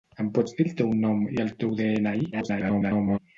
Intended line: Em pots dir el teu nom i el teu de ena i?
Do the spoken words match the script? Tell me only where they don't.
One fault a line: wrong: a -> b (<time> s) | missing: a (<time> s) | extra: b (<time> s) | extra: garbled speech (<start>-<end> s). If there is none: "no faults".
extra: garbled speech (2.3-3.2 s)